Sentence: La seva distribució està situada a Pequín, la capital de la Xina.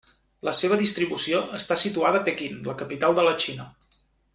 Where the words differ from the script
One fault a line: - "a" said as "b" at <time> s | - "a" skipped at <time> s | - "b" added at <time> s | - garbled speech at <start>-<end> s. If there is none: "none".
none